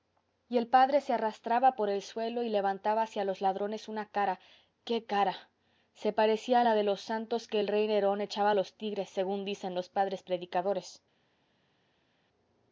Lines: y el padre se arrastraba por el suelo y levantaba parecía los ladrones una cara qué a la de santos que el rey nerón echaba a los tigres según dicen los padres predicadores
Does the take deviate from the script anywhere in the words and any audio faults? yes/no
yes